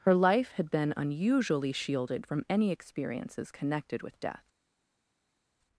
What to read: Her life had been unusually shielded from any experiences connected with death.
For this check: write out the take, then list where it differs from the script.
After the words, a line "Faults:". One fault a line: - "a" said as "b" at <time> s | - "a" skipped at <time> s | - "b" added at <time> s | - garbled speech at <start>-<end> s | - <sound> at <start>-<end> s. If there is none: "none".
Her life had been unusually shielded from any experiences connected with death.
Faults:
none